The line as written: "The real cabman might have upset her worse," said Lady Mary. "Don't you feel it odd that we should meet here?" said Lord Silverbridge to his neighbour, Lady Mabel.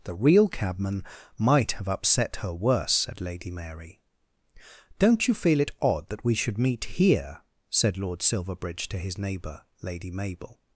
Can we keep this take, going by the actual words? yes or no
yes